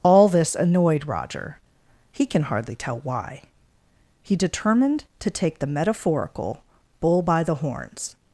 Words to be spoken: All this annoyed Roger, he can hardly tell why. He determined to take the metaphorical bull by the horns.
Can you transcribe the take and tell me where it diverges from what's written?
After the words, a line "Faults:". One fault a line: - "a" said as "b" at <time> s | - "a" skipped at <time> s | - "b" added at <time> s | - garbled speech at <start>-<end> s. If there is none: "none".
All this annoyed Roger, he can hardly tell why. He determined to take the metaphorical bull by the horns.
Faults:
none